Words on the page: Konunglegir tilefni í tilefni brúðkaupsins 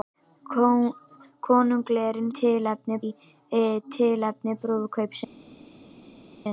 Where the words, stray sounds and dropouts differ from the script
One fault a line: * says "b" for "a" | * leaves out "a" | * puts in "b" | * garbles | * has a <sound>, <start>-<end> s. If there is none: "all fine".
all fine